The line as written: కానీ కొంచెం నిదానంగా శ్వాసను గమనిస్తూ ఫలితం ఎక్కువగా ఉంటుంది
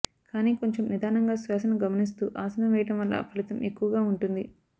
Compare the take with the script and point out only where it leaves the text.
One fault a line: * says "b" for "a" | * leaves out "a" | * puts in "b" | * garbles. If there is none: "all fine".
* puts in "ఆసనం వేయడం వల్ల"